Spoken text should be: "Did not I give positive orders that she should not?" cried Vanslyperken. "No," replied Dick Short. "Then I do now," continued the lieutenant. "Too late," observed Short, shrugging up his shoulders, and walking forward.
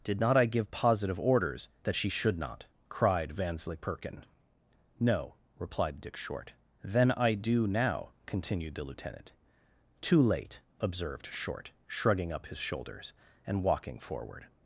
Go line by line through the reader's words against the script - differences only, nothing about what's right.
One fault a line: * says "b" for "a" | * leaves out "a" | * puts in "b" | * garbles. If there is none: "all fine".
all fine